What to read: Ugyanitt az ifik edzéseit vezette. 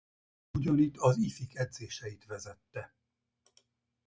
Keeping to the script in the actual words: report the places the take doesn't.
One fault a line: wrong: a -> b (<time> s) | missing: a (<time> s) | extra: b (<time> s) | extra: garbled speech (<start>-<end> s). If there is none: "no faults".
no faults